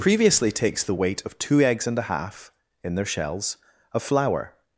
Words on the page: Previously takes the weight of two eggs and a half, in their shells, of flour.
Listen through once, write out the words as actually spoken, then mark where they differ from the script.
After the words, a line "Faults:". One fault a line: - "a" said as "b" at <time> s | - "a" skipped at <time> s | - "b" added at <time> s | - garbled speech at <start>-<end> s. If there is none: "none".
Previously takes the weight of two eggs and a half, in their shells, of flour.
Faults:
none